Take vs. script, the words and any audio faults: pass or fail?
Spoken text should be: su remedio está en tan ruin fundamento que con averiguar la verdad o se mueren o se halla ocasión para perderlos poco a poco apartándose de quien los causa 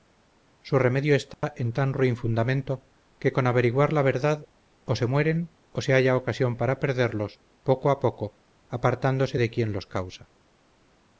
fail